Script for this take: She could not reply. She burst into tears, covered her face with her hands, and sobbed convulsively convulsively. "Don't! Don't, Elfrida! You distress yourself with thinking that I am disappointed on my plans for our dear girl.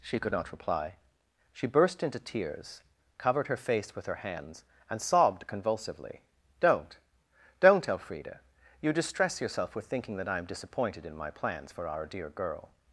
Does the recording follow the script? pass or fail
fail